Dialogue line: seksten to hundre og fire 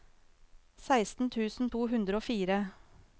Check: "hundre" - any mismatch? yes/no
no